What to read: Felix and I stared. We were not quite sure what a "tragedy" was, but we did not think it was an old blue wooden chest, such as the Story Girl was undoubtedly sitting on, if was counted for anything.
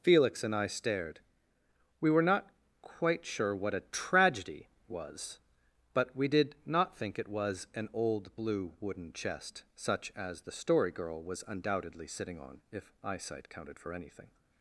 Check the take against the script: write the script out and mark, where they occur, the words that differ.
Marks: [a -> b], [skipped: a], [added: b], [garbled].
Felix and I stared. We were not quite sure what a "tragedy" was, but we did not think it was an old blue wooden chest, such as the Story Girl was undoubtedly sitting on, if [was -> eyesight] counted for anything.